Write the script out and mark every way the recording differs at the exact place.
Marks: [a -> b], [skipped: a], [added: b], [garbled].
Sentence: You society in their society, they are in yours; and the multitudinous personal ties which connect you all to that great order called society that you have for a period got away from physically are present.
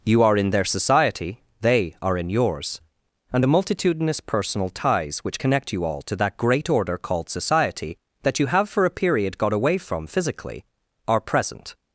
You [society -> are] in their society, they are in yours; and the multitudinous personal ties which connect you all to that great order called society that you have for a period got away from physically are present.